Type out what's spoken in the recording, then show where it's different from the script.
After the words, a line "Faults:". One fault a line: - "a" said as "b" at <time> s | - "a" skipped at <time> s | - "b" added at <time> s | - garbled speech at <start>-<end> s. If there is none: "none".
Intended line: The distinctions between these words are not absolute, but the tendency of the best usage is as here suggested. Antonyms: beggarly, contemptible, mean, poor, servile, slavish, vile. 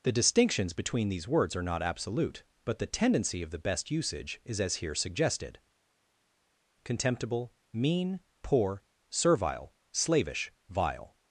The distinctions between these words are not absolute, but the tendency of the best usage is as here suggested. Contemptible, mean, poor, servile, slavish, vile.
Faults:
- "Antonyms beggarly" skipped at 5.6 s